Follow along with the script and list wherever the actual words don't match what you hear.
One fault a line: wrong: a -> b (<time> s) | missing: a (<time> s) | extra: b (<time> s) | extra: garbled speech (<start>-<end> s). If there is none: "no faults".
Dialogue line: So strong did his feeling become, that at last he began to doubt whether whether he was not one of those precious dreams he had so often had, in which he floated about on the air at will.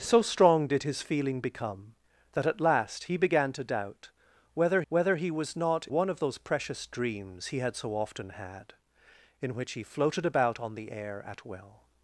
no faults